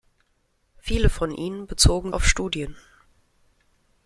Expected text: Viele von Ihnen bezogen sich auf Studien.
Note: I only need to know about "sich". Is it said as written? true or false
false